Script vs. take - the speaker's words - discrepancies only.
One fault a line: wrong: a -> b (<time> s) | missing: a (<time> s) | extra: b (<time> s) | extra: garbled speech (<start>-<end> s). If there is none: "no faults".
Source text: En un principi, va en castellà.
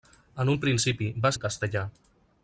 no faults